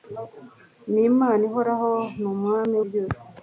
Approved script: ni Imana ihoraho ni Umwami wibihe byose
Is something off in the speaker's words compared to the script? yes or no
yes